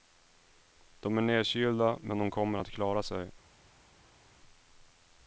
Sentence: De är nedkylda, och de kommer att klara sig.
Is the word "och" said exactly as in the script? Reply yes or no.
no